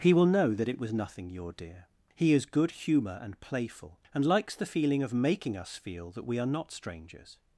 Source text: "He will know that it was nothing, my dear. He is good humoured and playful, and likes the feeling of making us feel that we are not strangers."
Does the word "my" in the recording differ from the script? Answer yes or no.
yes